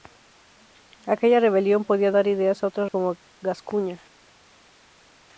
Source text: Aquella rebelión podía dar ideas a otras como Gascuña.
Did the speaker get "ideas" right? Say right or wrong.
right